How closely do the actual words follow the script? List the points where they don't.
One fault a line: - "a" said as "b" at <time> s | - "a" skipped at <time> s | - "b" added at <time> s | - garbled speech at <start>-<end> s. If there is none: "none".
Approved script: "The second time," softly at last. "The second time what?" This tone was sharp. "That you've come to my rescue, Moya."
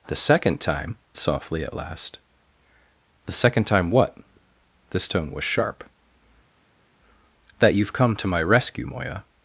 none